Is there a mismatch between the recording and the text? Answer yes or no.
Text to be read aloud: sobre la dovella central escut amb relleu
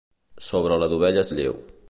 yes